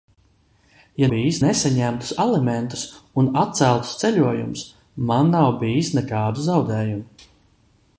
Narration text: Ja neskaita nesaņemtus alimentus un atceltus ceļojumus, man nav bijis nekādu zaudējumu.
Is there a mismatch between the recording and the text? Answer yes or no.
yes